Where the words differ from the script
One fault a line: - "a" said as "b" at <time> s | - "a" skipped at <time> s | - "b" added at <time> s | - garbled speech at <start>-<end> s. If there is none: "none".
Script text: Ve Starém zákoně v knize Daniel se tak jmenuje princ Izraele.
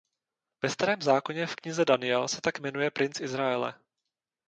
none